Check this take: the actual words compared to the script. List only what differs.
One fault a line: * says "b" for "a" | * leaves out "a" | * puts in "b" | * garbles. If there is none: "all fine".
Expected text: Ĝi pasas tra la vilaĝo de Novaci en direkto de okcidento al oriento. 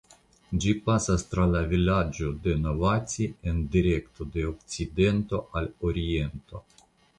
all fine